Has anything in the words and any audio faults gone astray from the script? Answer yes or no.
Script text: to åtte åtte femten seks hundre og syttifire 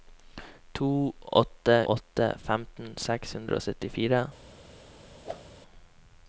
yes